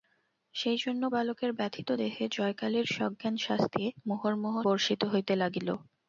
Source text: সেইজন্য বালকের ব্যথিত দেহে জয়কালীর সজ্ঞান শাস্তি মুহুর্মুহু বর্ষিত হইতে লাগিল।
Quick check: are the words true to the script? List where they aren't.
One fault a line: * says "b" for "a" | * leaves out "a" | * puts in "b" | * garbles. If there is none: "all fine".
all fine